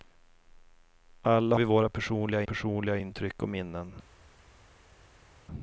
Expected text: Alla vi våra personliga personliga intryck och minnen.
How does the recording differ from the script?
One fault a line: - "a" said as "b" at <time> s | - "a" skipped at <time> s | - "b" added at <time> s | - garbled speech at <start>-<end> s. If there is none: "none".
none